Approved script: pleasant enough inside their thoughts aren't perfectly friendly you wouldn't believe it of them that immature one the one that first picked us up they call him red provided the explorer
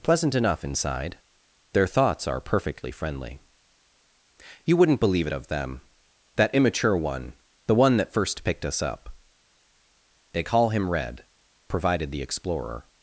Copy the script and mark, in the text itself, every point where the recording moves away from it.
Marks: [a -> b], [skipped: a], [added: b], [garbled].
pleasant enough inside their thoughts [aren't -> are] perfectly friendly you wouldn't believe it of them that immature one the one that first picked us up they call him red provided the explorer